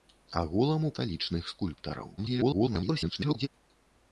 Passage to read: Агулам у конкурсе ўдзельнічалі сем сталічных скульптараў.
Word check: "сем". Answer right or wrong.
wrong